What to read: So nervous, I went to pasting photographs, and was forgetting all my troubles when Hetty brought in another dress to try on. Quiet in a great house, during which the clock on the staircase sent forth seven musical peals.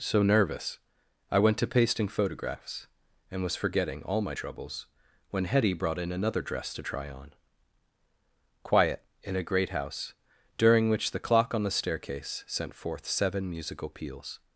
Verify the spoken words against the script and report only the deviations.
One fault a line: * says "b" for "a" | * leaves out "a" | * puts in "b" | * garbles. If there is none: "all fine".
all fine